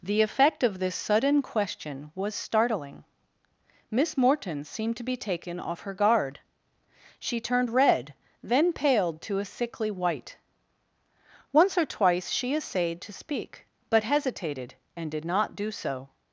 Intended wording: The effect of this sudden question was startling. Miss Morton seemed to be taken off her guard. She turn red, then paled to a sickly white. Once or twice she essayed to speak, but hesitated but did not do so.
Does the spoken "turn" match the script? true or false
false